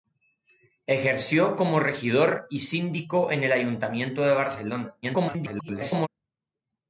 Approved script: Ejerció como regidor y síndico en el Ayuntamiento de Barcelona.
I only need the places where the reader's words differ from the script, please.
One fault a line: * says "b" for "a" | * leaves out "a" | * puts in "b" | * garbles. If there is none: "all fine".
* garbles